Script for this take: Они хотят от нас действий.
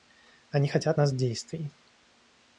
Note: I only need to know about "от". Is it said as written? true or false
false